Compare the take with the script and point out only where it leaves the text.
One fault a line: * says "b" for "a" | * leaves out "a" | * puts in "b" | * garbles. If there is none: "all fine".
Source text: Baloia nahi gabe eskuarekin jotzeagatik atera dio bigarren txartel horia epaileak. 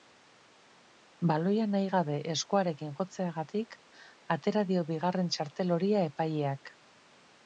all fine